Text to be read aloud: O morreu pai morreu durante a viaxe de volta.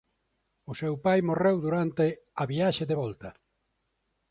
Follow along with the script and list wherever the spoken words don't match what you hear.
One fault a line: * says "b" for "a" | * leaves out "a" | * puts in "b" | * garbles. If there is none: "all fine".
* says "seu" for "morreu"